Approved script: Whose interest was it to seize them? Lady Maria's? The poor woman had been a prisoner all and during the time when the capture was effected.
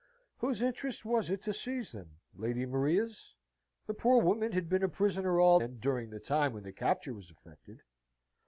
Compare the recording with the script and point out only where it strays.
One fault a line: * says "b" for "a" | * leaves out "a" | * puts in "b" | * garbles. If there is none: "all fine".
all fine